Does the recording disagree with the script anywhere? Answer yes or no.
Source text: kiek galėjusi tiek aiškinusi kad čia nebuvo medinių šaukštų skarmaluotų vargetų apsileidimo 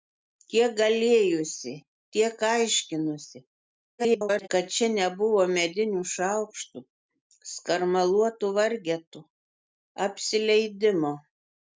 yes